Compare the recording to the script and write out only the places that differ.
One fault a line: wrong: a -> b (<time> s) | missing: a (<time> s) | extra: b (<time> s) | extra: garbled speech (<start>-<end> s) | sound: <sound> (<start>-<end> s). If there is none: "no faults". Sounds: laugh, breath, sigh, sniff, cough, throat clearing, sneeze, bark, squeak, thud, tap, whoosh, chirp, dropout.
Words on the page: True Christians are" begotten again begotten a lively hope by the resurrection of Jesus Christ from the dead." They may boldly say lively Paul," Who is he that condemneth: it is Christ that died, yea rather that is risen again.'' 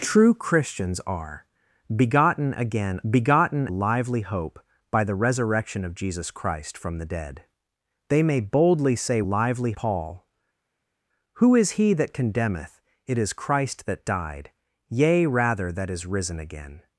no faults